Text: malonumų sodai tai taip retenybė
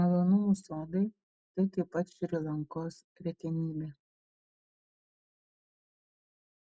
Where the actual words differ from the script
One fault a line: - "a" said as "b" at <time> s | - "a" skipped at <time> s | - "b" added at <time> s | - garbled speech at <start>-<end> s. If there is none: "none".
- "pat šri lankos" added at 2.0 s